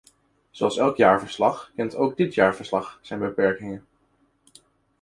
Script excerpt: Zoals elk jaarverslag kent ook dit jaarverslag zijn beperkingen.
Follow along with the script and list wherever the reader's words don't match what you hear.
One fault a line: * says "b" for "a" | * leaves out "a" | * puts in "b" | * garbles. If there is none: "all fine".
all fine